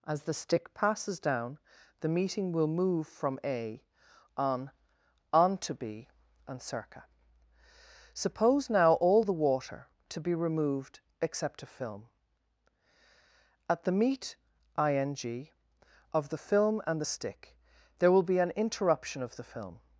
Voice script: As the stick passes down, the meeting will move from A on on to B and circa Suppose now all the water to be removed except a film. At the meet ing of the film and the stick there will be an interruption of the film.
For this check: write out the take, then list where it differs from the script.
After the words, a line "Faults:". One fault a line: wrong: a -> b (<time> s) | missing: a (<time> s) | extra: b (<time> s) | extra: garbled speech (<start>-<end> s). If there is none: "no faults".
As the stick passes down, the meeting will move from A on on to B and circa Suppose now all the water to be removed except a film. At the meet ing of the film and the stick there will be an interruption of the film.
Faults:
no faults